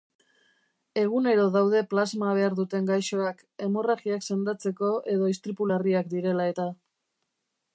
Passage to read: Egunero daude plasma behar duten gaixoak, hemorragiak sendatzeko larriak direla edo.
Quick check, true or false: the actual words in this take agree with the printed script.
false